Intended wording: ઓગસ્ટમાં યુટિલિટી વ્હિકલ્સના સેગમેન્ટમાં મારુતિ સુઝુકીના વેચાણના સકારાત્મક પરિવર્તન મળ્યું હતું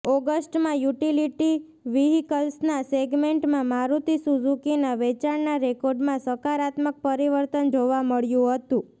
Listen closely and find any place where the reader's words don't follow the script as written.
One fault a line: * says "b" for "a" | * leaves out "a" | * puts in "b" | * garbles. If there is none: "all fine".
* puts in "રેકોર્ડમાં"
* puts in "જોવા"